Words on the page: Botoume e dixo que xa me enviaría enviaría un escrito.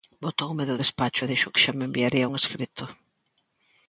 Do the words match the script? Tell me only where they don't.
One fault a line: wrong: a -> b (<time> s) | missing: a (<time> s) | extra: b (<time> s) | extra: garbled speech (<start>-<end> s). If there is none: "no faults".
extra: do despacho (0.7 s)
missing: enviaría (2.3 s)